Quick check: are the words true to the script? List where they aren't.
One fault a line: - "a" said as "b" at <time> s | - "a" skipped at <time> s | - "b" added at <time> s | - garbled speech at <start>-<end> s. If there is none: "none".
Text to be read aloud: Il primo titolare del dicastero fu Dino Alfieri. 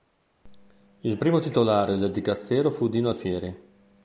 none